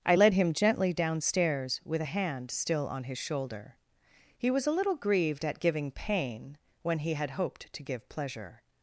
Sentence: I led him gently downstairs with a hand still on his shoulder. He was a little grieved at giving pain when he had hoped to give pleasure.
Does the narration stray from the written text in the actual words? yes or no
no